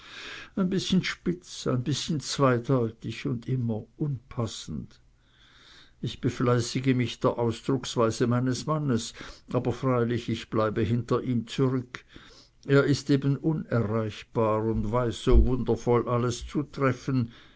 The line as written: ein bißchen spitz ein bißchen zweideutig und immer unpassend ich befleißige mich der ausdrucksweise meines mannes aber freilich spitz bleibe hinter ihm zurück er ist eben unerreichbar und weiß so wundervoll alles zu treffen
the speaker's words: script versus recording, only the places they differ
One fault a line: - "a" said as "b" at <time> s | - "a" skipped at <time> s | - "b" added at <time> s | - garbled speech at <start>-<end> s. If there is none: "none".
- "spitz" said as "ich" at 10.3 s